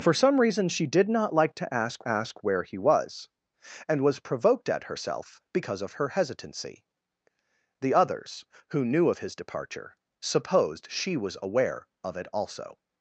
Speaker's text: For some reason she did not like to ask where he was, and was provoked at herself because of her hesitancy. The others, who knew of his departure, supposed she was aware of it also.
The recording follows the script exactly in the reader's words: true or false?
false